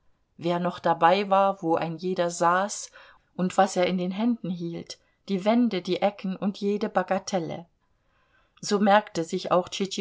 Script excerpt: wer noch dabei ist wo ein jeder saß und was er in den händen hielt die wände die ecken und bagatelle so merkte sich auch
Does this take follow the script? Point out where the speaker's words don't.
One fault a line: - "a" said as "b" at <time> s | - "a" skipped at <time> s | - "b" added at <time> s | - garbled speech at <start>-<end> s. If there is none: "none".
- "ist" said as "war" at 1.3 s
- "jede" added at 6.6 s